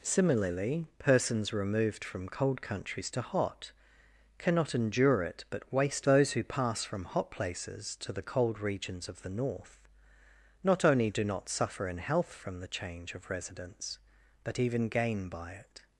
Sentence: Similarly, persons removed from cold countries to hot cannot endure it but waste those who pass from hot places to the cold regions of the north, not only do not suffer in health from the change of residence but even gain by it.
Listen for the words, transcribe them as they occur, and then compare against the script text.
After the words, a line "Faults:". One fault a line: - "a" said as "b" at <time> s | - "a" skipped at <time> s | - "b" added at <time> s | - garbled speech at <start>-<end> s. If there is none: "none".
Similarly, persons removed from cold countries to hot cannot endure it but waste those who pass from hot places to the cold regions of the north, not only do not suffer in health from the change of residence but even gain by it.
Faults:
none